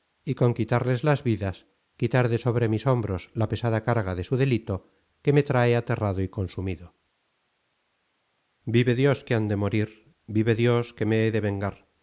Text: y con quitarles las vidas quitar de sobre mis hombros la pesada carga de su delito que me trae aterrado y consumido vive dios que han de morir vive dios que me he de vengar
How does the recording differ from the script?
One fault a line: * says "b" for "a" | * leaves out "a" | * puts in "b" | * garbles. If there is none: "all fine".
all fine